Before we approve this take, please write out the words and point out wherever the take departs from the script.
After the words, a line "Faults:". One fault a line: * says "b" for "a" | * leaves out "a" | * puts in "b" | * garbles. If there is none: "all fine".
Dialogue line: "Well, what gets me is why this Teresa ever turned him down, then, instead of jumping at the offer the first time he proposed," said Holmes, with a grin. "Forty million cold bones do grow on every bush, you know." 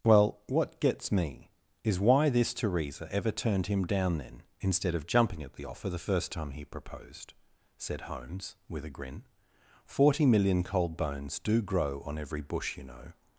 "Well, what gets me is why this Teresa ever turned him down, then, instead of jumping at the offer the first time he proposed," said Holmes, with a grin. "Forty million cold bones do grow on every bush, you know."
Faults:
all fine